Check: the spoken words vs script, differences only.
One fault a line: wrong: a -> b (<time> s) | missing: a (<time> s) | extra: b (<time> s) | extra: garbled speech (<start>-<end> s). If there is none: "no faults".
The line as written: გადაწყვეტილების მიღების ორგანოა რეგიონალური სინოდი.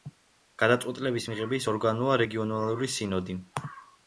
no faults